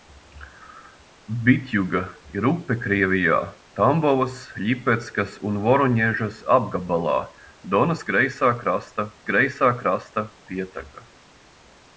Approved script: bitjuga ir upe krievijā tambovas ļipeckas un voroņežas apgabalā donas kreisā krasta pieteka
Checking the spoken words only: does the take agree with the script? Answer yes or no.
no